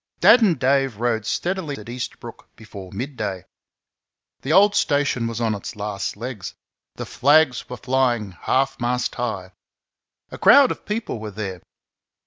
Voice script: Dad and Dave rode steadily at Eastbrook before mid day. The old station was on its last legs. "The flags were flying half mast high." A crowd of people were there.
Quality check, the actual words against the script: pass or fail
pass